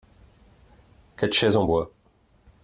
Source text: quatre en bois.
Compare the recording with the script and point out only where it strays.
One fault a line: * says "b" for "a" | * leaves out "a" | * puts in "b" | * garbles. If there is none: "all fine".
* puts in "chaises"